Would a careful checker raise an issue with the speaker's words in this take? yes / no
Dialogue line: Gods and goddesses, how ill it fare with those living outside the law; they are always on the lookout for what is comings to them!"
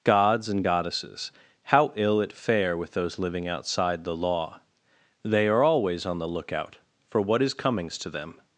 no